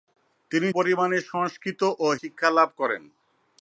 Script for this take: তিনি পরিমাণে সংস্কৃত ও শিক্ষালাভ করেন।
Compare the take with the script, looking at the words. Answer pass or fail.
pass